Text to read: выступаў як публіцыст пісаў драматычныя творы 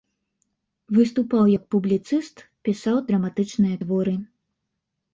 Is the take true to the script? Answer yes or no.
yes